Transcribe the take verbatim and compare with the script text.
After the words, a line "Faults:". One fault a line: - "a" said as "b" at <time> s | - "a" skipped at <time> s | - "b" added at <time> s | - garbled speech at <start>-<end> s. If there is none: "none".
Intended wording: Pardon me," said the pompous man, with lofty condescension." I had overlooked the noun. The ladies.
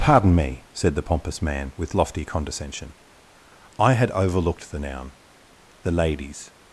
Pardon me," said the pompous man, with lofty condescension." I had overlooked the noun. The ladies.
Faults:
none